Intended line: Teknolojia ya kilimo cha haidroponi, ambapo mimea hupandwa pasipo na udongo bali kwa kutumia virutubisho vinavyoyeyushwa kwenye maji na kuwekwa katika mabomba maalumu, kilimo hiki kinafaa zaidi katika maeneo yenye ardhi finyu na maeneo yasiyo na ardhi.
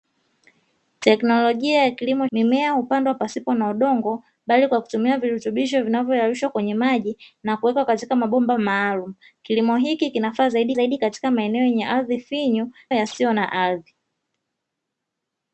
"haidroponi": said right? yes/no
no